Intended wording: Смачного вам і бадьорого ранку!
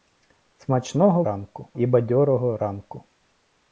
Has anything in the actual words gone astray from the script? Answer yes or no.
yes